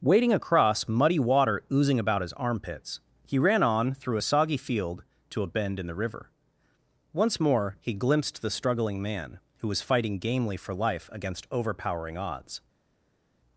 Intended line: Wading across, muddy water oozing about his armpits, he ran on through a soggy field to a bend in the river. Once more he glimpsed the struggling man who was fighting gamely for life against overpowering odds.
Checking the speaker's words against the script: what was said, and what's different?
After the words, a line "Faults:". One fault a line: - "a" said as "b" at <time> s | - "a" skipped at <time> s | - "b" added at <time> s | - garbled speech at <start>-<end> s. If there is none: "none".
Wading across, muddy water oozing about his armpits, he ran on through a soggy field to a bend in the river. Once more he glimpsed the struggling man who was fighting gamely for life against overpowering odds.
Faults:
none